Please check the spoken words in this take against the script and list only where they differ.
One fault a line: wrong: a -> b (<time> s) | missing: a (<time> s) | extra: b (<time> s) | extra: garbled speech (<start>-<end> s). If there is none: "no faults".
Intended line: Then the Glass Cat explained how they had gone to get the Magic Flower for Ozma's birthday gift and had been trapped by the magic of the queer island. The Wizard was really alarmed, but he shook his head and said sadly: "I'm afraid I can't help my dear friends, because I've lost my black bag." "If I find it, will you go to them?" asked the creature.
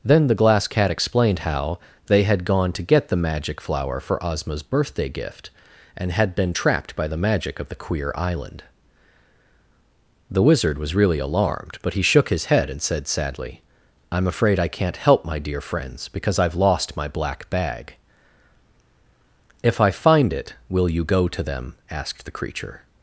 no faults